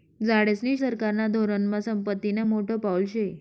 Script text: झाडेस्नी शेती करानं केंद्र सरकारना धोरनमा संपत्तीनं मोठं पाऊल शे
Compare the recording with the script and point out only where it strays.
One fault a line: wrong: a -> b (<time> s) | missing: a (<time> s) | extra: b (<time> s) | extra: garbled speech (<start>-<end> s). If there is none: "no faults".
missing: शेती करानं केंद्र (0.8 s)